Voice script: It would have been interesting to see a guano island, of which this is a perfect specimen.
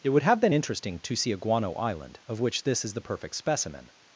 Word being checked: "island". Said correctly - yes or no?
yes